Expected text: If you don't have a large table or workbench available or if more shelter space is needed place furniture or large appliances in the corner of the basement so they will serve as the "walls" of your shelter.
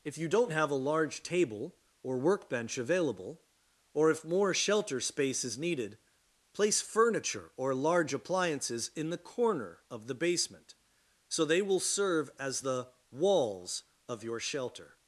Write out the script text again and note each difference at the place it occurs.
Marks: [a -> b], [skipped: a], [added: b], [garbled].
If you don't have a large table or workbench available or if more shelter space is needed place furniture or large appliances in the corner of the basement so they will serve as the "walls" of your shelter.